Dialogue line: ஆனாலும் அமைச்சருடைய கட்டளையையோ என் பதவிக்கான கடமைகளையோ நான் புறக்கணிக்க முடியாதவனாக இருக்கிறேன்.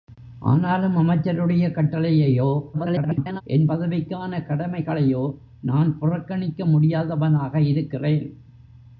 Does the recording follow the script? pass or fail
fail